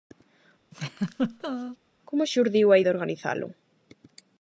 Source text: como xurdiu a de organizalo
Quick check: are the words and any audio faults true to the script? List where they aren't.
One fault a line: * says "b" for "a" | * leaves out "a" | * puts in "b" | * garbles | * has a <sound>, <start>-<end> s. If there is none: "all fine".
* has a laugh, 0.7-1.8 s